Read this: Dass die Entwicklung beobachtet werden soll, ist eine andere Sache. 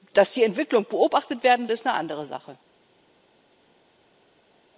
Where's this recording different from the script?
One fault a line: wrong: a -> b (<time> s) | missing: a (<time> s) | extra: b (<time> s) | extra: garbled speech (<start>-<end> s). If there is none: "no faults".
missing: soll (1.7 s)